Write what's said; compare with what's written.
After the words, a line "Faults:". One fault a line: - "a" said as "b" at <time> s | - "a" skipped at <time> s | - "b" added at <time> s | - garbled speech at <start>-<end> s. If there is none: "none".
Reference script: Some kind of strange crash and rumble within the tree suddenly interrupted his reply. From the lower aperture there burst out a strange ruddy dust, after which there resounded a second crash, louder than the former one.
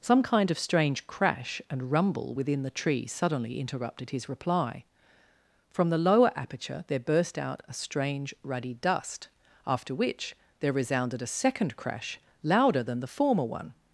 Some kind of strange crash and rumble within the tree suddenly interrupted his reply. From the lower aperture there burst out a strange ruddy dust, after which there resounded a second crash, louder than the former one.
Faults:
none